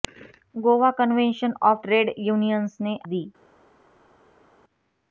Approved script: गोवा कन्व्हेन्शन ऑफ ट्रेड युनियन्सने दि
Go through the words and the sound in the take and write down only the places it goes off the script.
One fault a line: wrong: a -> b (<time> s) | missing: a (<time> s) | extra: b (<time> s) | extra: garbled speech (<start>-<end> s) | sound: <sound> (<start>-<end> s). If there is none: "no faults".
no faults